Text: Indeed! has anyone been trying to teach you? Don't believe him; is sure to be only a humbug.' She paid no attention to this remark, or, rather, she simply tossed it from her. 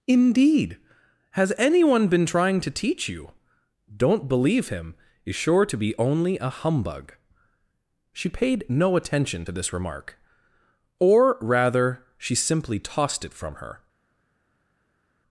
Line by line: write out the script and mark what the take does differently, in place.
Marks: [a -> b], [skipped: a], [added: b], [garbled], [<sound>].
Indeed! has anyone been trying to teach you? Don't believe him; is sure to be only a humbug.' She paid no attention to this remark, or, rather, she simply tossed it from her.